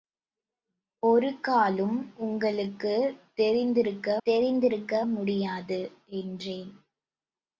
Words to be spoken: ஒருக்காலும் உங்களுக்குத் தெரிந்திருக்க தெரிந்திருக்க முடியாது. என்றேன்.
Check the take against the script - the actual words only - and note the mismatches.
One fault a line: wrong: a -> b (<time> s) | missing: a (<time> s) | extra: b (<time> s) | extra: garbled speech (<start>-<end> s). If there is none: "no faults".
no faults